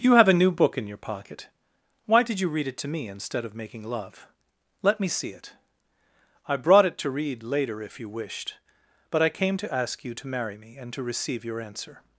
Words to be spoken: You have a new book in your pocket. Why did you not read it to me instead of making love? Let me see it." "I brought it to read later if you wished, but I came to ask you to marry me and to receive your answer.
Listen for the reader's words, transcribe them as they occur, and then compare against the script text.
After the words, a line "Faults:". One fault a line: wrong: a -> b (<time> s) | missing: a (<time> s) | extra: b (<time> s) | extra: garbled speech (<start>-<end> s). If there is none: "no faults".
You have a new book in your pocket. Why did you read it to me instead of making love? Let me see it." "I brought it to read later if you wished, but I came to ask you to marry me and to receive your answer.
Faults:
missing: not (2.5 s)